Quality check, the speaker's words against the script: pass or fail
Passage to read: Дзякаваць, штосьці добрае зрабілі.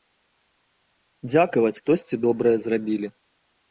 pass